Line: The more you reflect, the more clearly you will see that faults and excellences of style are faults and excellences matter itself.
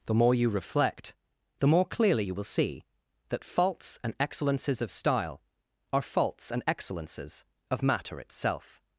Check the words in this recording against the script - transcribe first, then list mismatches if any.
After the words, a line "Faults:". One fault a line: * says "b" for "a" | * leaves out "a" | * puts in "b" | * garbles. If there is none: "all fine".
The more you reflect, the more clearly you will see that faults and excellences of style are faults and excellences of matter itself.
Faults:
* puts in "of"